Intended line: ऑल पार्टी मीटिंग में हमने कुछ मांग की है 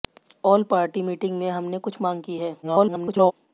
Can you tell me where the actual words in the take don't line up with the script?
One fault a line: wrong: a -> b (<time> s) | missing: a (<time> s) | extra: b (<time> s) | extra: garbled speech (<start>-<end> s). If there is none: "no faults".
extra: garbled speech (2.6-3.3 s)